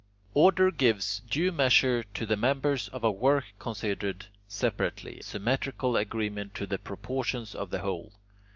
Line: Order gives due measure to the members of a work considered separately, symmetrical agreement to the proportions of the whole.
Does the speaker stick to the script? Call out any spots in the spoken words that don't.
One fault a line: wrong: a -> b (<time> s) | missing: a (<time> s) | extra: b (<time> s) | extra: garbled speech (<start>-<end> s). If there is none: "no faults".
no faults